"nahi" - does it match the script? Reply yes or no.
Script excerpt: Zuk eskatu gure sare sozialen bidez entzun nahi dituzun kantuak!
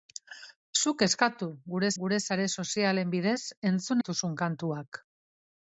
no